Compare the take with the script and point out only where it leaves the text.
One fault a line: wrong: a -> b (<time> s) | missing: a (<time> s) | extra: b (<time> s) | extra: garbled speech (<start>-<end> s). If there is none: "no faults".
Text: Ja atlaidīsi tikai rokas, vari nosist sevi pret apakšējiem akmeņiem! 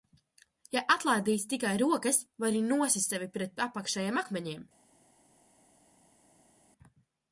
no faults